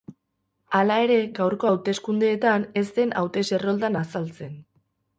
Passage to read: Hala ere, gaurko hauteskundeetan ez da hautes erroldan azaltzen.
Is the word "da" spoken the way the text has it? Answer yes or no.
no